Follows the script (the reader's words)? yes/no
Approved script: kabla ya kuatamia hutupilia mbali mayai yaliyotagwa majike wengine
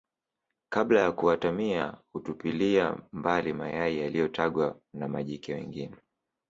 no